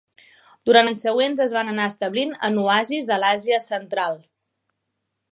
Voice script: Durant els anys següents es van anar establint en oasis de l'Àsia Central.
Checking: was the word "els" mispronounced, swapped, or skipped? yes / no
yes